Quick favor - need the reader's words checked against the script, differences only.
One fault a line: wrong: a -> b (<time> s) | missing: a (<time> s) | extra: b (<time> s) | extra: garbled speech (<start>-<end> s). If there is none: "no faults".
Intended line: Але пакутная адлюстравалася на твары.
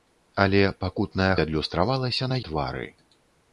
no faults